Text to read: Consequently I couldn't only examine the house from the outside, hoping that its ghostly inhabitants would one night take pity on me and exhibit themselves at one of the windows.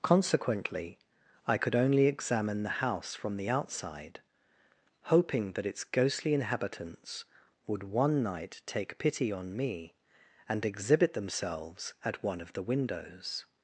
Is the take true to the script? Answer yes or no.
no